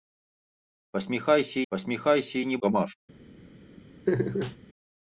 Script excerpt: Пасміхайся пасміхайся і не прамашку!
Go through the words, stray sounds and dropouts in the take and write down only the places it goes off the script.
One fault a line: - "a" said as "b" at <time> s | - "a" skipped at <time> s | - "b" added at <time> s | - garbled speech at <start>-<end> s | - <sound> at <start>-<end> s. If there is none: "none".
- laugh at 4.1-4.6 s